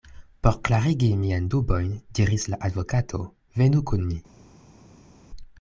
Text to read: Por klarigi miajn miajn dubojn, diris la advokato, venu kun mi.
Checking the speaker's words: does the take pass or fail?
fail